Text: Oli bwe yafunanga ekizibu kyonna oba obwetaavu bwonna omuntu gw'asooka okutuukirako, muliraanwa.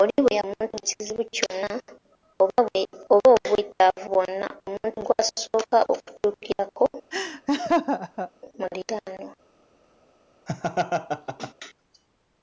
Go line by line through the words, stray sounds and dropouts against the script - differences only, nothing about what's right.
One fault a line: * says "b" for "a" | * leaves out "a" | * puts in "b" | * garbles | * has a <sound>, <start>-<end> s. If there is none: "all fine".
* says "omuntu" for "yafunanga"
* has a laugh, 7.1-8.3 s
* has a laugh, 10.5-11.5 s